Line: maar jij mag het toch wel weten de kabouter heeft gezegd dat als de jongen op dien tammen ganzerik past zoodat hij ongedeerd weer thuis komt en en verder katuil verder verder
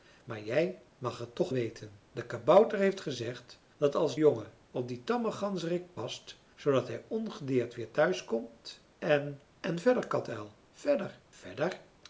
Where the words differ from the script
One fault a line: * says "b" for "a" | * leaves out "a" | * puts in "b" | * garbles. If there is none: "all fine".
* leaves out "wel"
* leaves out "de"